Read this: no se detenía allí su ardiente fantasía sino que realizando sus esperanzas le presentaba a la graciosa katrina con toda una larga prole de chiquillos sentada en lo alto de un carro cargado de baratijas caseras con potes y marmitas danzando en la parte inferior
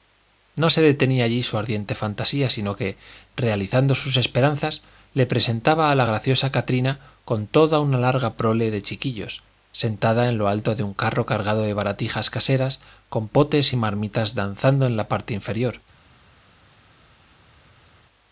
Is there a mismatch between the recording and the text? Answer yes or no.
no